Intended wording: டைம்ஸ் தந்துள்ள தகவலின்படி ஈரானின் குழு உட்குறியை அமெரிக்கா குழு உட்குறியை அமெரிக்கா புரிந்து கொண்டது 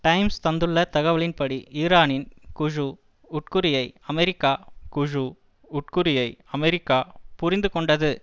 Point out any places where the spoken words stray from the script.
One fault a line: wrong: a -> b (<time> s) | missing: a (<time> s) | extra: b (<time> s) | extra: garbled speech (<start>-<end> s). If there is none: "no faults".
no faults